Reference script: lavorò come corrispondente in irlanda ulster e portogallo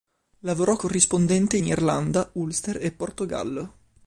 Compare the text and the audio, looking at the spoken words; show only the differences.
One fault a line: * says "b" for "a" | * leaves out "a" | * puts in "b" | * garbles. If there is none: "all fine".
* leaves out "come"